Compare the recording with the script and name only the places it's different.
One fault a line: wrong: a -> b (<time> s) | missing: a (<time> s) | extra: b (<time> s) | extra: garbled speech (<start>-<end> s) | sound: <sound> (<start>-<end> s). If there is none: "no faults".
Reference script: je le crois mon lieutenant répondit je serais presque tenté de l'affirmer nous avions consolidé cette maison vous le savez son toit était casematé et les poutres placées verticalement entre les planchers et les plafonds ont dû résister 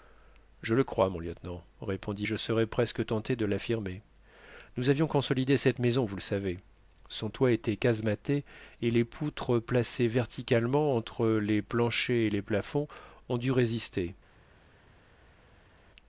no faults